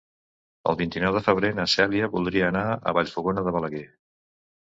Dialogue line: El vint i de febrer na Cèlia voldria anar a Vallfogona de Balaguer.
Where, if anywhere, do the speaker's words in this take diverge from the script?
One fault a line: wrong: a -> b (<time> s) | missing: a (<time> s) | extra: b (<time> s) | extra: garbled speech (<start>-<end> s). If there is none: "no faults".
extra: nou (1.0 s)